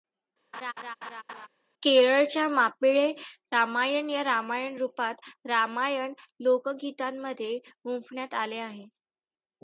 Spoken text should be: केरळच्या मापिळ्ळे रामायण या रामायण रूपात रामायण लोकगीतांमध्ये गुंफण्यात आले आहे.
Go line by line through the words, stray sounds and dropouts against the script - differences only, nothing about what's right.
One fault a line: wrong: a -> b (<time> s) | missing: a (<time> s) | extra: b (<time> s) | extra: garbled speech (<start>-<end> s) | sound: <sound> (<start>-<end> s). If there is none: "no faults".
sound: laugh (0.5-1.5 s)